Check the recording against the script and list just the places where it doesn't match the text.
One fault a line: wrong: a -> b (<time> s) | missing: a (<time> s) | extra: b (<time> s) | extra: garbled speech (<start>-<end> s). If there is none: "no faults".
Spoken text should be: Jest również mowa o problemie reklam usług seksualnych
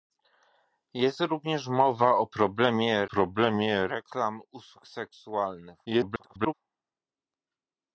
extra: problemie (3.0 s)
extra: garbled speech (5.8-6.5 s)